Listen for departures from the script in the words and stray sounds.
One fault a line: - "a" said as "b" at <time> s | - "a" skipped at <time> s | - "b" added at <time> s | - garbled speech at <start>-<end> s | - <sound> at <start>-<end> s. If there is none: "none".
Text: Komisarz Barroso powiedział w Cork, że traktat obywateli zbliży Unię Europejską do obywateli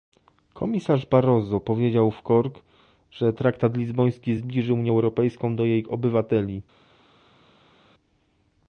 - "obywateli" said as "lizboński" at 3.8 s
- "jej" added at 5.7 s